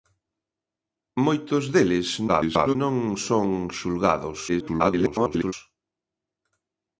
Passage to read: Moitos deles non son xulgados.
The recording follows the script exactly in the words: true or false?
false